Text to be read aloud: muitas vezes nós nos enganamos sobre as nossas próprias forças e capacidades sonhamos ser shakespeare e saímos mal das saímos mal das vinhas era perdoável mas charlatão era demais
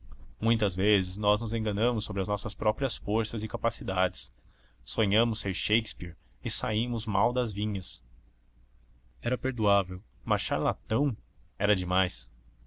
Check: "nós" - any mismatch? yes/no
no